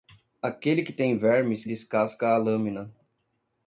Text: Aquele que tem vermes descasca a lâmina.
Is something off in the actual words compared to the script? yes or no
no